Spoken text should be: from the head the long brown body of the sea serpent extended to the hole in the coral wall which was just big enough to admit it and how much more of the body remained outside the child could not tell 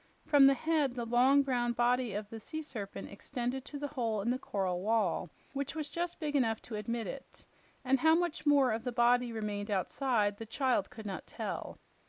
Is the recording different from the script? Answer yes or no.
no